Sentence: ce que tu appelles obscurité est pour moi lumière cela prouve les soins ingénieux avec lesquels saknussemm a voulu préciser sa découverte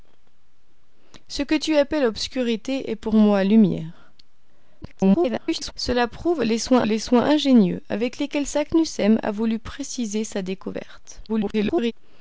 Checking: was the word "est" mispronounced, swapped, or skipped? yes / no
no